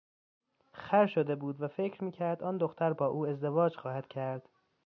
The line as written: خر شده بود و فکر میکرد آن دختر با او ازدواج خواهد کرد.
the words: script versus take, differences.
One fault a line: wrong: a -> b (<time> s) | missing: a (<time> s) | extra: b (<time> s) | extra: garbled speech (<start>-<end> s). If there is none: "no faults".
no faults